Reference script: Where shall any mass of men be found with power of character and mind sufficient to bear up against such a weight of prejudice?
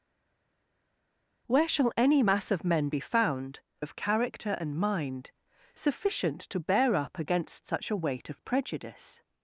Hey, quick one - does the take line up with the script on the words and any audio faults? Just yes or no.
no